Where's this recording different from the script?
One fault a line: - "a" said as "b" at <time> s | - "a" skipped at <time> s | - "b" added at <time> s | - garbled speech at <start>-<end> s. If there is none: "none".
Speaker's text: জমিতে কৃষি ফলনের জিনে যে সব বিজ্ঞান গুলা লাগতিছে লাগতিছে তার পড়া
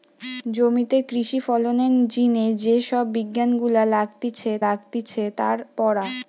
none